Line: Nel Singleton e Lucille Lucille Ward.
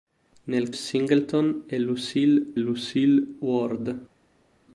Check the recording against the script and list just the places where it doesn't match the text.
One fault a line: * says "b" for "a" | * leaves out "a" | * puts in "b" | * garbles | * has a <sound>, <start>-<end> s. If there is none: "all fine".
all fine